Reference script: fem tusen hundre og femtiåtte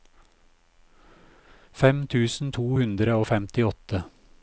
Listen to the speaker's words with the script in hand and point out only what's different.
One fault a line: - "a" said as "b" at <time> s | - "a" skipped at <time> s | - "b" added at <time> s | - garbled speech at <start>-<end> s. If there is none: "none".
- "to" added at 2.6 s